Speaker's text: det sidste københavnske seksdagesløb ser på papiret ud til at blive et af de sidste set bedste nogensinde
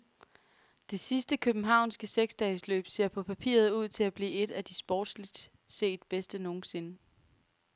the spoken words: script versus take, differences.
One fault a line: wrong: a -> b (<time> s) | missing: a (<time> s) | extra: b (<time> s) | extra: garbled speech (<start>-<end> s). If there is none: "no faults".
wrong: sidste -> sportsligt (4.7 s)